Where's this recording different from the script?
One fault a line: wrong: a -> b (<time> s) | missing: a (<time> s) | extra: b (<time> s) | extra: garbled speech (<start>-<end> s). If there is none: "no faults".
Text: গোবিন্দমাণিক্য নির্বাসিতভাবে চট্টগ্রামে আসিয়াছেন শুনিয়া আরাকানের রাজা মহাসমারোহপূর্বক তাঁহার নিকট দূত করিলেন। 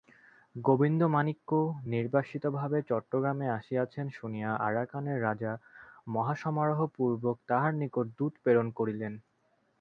extra: প্রেরণ (8.4 s)